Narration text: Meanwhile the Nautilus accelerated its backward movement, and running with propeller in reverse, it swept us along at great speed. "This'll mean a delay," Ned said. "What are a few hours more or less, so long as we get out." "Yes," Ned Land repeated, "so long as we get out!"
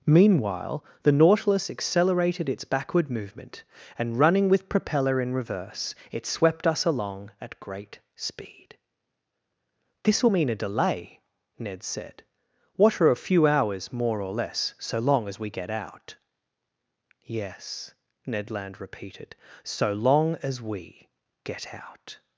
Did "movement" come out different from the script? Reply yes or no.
no